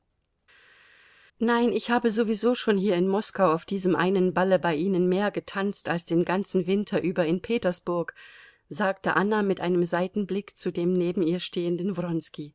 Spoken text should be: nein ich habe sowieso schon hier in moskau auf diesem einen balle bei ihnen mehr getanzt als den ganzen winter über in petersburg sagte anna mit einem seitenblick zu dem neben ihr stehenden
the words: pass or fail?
pass